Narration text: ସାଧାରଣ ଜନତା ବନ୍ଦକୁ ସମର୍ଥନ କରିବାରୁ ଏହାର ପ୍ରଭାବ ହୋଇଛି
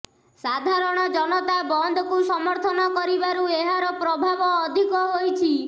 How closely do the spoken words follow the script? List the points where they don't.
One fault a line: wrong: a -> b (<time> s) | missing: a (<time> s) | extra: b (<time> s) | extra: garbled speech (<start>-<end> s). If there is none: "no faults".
extra: ଅଧିକ (4.6 s)